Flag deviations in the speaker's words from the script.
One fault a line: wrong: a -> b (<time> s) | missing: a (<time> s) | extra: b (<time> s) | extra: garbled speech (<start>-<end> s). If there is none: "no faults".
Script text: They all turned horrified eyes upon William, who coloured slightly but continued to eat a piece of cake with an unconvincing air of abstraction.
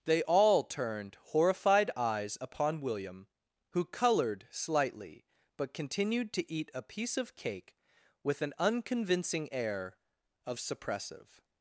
wrong: abstraction -> suppressive (10.6 s)